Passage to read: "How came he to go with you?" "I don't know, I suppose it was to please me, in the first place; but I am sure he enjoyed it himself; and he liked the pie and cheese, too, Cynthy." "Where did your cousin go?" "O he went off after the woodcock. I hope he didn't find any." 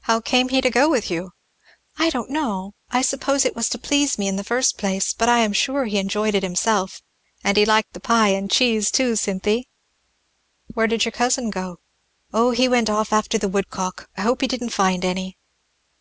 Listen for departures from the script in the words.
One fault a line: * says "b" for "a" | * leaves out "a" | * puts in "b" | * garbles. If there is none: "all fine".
all fine